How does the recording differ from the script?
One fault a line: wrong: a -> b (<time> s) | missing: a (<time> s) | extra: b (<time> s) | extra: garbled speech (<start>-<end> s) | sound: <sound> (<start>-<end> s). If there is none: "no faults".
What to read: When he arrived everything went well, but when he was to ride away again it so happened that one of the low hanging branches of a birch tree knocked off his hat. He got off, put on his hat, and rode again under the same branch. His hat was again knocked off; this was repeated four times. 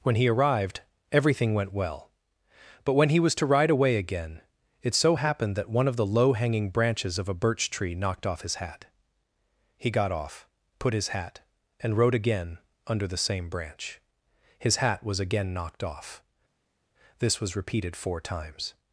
missing: on (10.9 s)